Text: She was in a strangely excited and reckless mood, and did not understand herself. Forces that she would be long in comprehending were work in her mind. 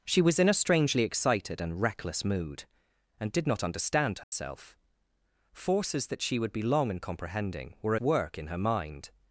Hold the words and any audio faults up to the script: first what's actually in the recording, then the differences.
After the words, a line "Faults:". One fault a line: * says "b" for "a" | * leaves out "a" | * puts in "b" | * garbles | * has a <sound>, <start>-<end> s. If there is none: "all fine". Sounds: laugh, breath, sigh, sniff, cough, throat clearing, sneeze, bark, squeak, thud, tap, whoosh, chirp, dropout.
She was in a strangely excited and reckless mood, and did not understand herself. Forces that she would be long in comprehending were work in her mind.
Faults:
* has a dropout, 4.2-4.3 s